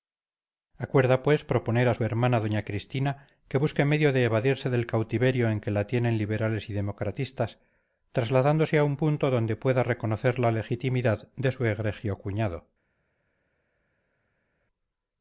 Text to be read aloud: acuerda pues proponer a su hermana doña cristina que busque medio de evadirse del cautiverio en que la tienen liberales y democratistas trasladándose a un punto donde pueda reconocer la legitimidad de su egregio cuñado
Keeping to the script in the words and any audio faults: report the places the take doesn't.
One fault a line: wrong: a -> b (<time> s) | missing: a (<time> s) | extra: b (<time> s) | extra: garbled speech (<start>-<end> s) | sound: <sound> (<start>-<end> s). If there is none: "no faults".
no faults